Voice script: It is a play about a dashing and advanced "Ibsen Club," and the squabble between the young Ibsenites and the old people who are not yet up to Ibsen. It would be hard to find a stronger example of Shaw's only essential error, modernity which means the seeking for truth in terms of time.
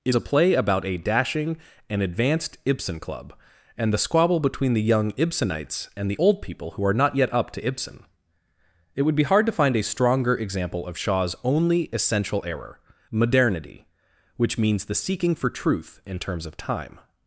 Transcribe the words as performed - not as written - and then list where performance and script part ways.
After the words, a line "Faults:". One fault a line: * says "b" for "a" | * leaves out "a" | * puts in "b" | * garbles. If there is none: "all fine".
It a play about a dashing and advanced "Ibsen Club," and the squabble between the young Ibsenites and the old people who are not yet up to Ibsen. It would be hard to find a stronger example of Shaw's only essential error, modernity which means the seeking for truth in terms of time.
Faults:
* leaves out "is"